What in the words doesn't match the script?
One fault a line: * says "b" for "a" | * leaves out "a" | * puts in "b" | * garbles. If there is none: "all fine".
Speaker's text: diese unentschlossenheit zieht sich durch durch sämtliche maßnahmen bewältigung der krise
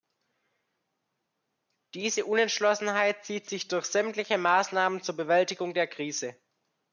* leaves out "durch"
* puts in "zur"